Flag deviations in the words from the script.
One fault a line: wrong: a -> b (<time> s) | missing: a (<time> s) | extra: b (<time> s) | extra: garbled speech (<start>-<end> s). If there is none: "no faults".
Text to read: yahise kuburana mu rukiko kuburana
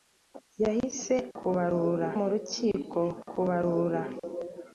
no faults